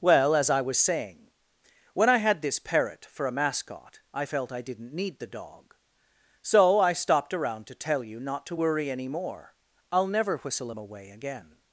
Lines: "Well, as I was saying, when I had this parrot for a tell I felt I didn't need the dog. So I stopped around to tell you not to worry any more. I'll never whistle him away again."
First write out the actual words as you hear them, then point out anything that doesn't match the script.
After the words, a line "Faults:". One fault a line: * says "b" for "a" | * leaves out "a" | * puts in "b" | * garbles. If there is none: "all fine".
"Well, as I was saying, when I had this parrot for a mascot I felt I didn't need the dog. So I stopped around to tell you not to worry any more. I'll never whistle him away again."
Faults:
* says "mascot" for "tell"